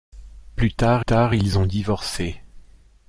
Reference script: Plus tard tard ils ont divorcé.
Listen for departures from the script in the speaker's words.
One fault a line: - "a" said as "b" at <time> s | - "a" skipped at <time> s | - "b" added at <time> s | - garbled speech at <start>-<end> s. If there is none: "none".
none